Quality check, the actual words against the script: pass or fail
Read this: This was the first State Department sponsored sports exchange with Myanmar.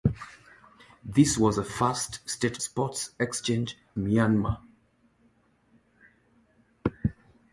fail